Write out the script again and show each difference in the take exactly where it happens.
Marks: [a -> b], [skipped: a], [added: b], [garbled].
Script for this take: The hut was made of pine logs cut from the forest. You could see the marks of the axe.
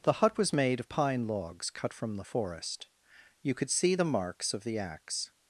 The hut was made of pine logs cut from the forest. You could see the marks of the axe.